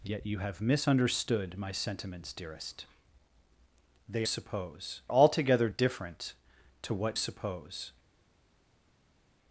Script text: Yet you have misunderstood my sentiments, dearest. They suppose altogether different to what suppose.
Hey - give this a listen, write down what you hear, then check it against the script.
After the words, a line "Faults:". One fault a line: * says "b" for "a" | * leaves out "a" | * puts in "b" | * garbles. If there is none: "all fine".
Yet you have misunderstood my sentiments, dearest. They suppose altogether different to what suppose.
Faults:
all fine